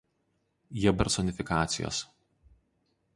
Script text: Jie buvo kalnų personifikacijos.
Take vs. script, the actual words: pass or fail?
fail